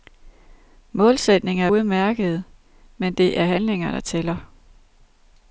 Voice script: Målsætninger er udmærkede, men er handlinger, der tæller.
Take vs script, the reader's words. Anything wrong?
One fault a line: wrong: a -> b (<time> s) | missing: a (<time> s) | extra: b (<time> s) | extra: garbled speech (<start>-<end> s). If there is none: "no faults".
extra: det (3.1 s)